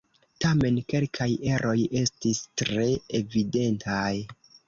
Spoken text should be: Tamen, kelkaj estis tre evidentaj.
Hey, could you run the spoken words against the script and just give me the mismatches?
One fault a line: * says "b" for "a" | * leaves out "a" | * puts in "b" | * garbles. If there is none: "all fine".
* puts in "eroj"